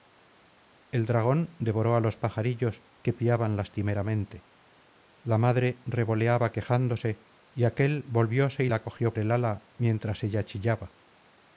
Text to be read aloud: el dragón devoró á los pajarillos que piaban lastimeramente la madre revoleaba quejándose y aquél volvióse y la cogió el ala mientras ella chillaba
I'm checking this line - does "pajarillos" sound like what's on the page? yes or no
yes